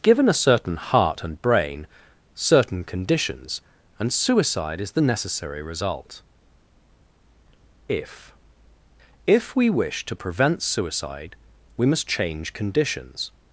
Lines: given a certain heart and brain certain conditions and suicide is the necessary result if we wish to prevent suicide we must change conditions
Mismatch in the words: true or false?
true